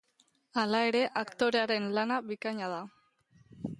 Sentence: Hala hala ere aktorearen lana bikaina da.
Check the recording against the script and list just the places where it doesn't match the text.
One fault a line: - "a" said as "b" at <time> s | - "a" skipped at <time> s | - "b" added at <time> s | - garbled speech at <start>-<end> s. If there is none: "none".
- "hala" skipped at 0.8 s